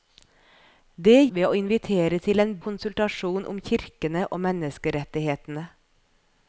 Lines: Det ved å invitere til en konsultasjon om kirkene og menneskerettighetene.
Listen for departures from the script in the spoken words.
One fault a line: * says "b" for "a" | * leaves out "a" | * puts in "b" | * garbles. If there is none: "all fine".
all fine